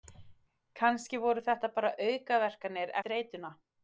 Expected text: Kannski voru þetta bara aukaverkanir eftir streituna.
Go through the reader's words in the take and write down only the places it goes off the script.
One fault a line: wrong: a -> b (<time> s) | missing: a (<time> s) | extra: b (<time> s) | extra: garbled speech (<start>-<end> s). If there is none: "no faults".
missing: eftir (3.0 s)